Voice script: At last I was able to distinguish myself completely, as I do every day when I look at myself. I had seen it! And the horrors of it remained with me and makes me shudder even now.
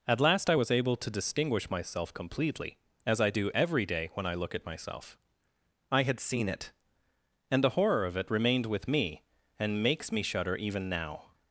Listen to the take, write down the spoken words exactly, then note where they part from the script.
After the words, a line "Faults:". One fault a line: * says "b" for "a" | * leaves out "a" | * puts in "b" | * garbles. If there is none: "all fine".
At last I was able to distinguish myself completely, as I do every day when I look at myself. I had seen it! And the horror of it remained with me and makes me shudder even now.
Faults:
* says "horror" for "horrors"